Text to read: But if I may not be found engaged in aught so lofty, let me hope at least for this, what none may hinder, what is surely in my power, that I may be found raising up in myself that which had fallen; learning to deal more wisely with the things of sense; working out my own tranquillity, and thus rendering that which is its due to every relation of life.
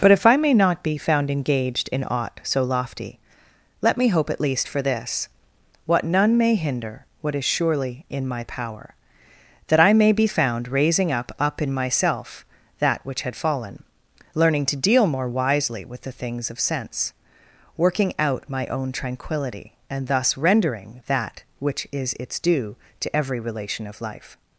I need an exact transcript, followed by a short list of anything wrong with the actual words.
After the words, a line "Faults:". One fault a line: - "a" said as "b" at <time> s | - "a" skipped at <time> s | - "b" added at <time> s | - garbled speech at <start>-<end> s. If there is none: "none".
But if I may not be found engaged in aught so lofty, let me hope at least for this, what none may hinder, what is surely in my power, that I may be found raising up up in myself that which had fallen; learning to deal more wisely with the things of sense; working out my own tranquillity, and thus rendering that which is its due to every relation of life.
Faults:
- "up" added at 11.4 s